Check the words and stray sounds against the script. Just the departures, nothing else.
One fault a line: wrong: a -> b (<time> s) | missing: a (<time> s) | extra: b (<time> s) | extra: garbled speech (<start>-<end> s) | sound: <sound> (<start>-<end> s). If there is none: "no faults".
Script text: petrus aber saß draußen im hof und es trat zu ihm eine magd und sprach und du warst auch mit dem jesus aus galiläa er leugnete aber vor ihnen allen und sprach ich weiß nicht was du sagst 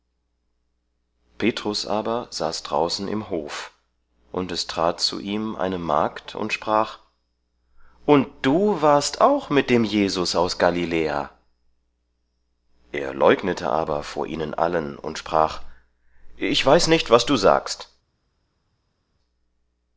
no faults